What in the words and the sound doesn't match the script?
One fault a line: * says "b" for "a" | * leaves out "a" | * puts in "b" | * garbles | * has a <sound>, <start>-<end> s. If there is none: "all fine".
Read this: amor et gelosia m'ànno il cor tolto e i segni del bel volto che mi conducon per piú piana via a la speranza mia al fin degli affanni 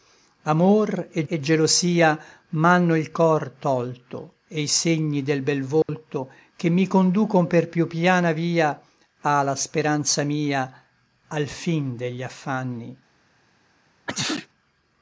* puts in "et"
* has a dropout, 5.8-5.9 s
* has a sneeze, 14.1-14.5 s